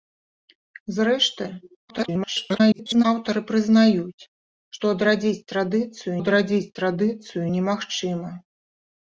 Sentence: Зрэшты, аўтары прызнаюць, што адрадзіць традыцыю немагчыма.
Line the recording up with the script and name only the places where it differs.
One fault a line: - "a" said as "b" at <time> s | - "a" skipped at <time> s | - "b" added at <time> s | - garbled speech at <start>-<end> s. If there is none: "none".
- garbled speech at 1.9-3.0 s
- "адрадзіць традыцыю" added at 6.2 s